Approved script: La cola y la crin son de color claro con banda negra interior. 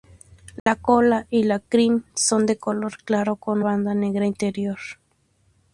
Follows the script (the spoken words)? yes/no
yes